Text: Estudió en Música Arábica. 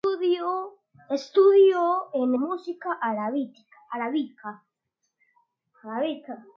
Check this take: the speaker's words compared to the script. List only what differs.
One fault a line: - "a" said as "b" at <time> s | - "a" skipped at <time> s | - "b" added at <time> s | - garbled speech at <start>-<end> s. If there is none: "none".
none